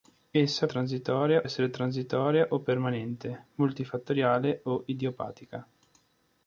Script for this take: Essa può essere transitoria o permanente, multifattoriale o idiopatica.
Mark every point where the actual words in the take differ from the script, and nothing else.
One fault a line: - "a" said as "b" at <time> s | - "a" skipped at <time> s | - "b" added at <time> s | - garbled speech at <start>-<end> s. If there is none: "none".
- "può" said as "transitoria" at 0.7 s